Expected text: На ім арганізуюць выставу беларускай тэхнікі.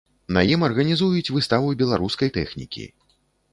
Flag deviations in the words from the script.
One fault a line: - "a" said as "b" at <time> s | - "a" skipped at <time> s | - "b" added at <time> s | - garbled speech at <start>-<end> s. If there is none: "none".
none